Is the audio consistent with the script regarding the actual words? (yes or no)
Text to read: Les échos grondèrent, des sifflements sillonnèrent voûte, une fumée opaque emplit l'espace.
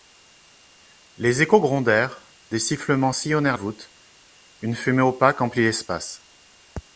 yes